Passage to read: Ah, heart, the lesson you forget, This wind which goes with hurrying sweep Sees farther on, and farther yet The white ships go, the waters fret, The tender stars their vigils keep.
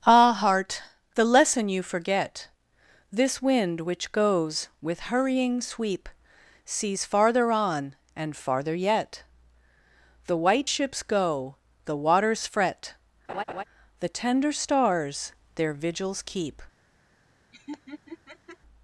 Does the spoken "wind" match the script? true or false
true